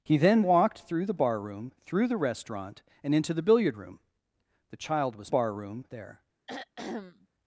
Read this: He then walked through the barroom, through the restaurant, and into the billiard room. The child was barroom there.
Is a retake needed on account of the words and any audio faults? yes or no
yes